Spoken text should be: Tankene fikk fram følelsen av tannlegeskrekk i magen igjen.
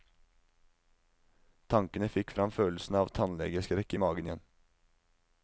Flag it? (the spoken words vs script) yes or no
no